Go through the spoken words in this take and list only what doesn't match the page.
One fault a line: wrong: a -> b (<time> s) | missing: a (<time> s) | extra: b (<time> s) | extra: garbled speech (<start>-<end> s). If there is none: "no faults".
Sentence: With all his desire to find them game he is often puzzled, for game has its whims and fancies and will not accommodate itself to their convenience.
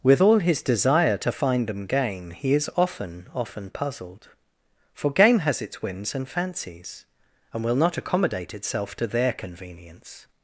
extra: often (3.3 s)